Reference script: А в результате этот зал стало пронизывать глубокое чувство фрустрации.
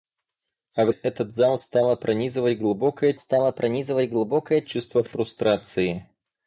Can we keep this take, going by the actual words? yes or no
no